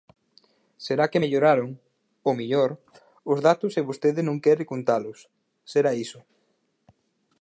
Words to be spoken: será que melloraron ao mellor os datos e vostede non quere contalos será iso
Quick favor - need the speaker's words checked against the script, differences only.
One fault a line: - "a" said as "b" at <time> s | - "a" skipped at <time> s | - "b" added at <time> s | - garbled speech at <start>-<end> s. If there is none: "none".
none